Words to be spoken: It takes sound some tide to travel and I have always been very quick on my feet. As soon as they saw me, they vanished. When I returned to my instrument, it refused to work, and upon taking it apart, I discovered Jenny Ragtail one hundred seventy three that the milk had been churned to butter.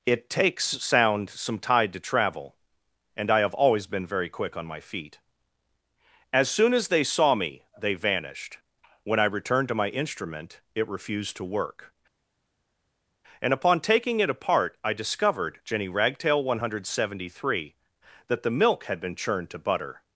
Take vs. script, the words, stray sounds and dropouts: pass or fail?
pass